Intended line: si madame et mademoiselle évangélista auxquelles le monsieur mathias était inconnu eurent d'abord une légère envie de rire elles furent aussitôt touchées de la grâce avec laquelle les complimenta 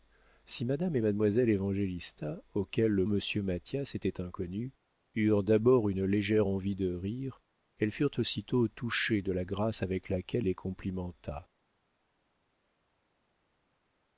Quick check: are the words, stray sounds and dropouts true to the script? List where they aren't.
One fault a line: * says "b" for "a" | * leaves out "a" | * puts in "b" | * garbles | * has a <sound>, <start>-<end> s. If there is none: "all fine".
all fine